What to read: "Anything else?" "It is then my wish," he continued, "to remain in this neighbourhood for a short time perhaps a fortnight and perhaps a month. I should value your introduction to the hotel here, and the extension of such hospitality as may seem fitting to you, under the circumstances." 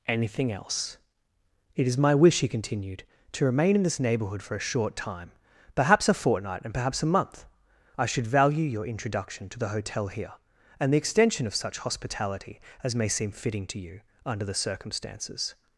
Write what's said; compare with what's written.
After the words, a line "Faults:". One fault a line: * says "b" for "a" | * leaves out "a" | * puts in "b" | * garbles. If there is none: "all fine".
"Anything else?" "It is my wish," he continued, "to remain in this neighbourhood for a short time perhaps a fortnight and perhaps a month. I should value your introduction to the hotel here, and the extension of such hospitality as may seem fitting to you, under the circumstances."
Faults:
* leaves out "then"